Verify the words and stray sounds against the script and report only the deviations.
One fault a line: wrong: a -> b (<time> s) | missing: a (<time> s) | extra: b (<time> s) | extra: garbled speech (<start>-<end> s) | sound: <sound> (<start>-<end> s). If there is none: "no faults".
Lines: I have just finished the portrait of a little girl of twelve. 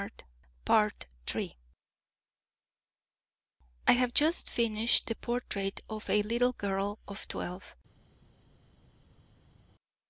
no faults